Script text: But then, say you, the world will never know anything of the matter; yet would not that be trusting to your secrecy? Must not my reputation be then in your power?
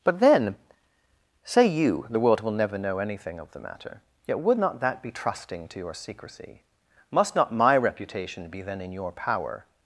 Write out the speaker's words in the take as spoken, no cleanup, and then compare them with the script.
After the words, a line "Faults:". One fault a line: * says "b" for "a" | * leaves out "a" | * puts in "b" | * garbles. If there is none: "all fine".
But then, say you, the world will never know anything of the matter; yet would not that be trusting to your secrecy? Must not my reputation be then in your power?
Faults:
all fine